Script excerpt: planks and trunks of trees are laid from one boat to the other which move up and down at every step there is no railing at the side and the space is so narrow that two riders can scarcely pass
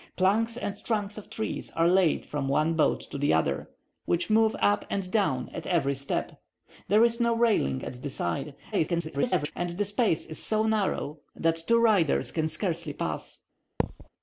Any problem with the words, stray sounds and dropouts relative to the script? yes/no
yes